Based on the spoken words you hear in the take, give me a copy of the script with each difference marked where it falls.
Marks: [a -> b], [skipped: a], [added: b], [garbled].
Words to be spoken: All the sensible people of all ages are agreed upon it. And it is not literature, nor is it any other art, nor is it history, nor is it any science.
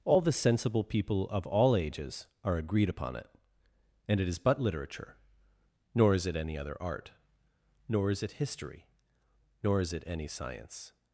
All the sensible people of all ages are agreed upon it. And it is [not -> but] literature, nor is it any other art, nor is it history, nor is it any science.